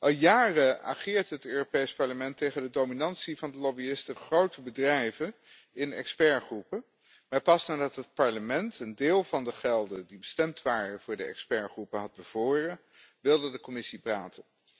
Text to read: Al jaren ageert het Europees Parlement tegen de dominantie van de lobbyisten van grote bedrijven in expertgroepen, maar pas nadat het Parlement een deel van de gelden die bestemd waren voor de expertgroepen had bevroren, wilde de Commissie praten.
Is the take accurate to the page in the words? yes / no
no